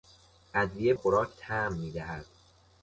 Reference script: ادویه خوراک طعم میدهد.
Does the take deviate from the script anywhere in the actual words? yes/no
no